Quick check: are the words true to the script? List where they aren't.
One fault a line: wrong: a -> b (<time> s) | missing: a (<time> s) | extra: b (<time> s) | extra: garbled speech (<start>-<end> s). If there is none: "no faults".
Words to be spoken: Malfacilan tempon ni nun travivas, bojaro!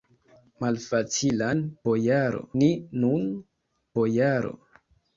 wrong: tempon -> bojaro (1.9 s)
missing: travivas (3.3 s)